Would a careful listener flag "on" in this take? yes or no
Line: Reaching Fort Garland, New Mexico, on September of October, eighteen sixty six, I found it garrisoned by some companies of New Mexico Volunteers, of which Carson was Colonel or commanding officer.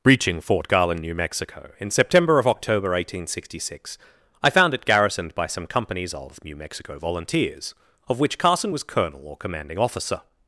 yes